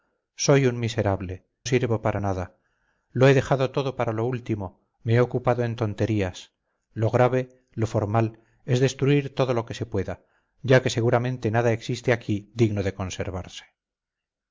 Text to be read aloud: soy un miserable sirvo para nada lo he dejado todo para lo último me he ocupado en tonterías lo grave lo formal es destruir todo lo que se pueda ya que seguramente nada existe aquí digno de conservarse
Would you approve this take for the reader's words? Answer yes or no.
yes